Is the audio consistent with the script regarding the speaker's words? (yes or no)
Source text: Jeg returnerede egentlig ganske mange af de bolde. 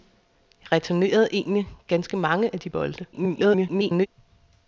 no